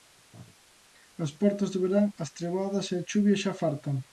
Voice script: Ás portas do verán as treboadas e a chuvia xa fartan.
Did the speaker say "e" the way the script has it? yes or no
yes